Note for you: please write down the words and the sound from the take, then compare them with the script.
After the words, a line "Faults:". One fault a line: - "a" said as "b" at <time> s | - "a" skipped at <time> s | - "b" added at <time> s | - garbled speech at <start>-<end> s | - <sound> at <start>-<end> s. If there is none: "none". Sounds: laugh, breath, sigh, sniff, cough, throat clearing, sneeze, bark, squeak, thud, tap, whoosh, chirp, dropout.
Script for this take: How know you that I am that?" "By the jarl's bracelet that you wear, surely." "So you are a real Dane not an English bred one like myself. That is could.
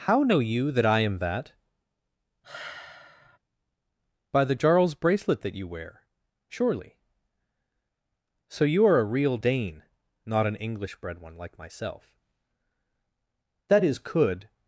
How know you that I am that?" "By the jarl's bracelet that you wear, surely." "So you are a real Dane not an English bred one like myself. That is could.
Faults:
- sigh at 2.4-3.4 s